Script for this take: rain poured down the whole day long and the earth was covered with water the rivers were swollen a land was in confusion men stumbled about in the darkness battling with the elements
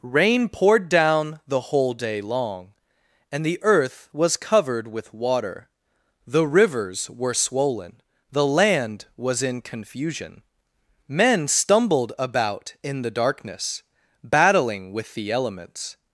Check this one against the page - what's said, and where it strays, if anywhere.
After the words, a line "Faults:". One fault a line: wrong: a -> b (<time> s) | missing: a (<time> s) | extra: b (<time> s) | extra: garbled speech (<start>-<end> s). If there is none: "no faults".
rain poured down the whole day long and the earth was covered with water the rivers were swollen the land was in confusion men stumbled about in the darkness battling with the elements
Faults:
wrong: a -> the (8.3 s)